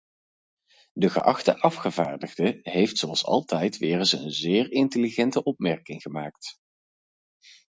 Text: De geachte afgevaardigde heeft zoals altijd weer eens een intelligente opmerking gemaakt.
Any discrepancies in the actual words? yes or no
yes